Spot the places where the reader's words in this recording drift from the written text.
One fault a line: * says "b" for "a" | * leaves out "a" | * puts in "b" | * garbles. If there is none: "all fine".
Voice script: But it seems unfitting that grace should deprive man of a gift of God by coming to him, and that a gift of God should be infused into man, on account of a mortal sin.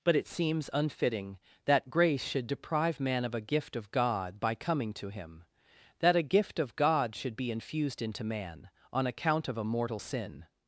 * leaves out "and"